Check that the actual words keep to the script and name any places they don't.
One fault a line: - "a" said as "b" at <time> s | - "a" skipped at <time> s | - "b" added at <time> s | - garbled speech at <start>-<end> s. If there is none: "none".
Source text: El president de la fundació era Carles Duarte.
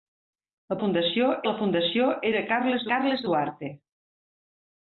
- "president" said as "fundació" at 0.8 s
- "Carles" added at 2.9 s